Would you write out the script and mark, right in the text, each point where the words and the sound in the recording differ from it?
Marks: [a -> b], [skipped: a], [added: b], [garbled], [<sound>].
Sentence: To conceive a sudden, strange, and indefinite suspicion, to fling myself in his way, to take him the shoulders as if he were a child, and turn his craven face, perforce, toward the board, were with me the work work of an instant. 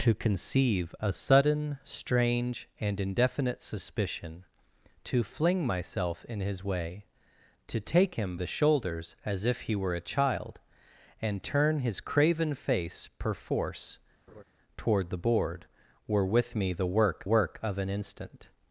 To conceive a sudden, strange, and indefinite suspicion, to fling myself in his way, to take him the shoulders as if he were a child, and turn his craven face, perforce, [laugh] toward the board, were with me the work work of an instant.